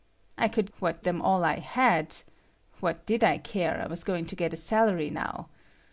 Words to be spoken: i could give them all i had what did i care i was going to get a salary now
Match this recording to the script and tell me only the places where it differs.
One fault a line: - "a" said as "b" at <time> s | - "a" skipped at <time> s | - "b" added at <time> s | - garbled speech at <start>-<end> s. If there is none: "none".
- "give" said as "what" at 0.8 s